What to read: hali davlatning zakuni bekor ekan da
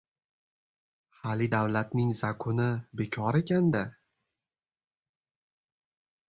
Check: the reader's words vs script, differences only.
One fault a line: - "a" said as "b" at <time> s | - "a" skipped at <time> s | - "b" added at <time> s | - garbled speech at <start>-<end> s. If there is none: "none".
none